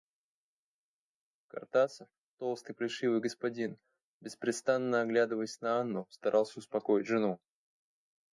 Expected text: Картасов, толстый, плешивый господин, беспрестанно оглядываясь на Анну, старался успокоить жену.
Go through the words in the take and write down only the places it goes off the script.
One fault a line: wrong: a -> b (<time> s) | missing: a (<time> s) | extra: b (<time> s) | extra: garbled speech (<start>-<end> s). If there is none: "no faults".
no faults